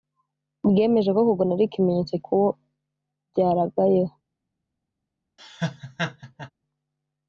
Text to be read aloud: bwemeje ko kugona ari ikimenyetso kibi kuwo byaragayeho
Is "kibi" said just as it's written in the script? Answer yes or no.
no